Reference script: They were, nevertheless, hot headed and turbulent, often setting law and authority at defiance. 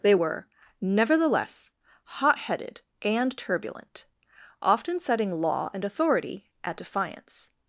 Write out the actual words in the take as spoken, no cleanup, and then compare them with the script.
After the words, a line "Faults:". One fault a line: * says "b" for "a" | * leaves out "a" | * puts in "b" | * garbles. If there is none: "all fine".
They were, nevertheless, hot headed and turbulent, often setting law and authority at defiance.
Faults:
all fine